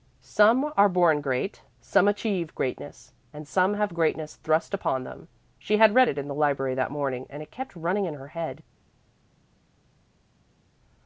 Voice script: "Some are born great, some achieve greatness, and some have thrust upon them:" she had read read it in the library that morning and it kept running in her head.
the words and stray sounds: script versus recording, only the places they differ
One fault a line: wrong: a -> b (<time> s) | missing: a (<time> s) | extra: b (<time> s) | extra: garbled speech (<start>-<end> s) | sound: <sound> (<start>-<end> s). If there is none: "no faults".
extra: greatness (3.9 s)
missing: read (6.1 s)